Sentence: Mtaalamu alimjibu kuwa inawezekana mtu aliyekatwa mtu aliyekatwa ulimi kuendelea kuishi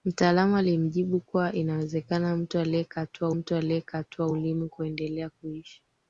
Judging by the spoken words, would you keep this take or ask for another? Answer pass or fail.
pass